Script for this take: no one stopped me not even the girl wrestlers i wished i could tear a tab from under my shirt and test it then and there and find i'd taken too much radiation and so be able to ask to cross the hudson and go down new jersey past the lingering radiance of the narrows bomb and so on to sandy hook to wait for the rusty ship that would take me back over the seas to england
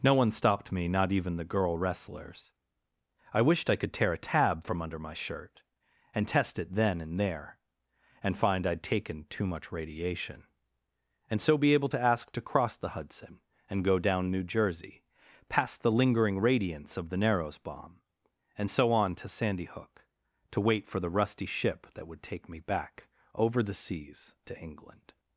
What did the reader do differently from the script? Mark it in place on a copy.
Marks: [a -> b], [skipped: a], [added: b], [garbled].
no one stopped me not even the girl wrestlers i wished i could tear a tab from under my shirt and test it then and there and find i'd taken too much radiation and so be able to ask to cross the hudson and go down new jersey past the lingering radiance of the narrows bomb and so on to sandy hook to wait for the rusty ship that would take me back over the seas to england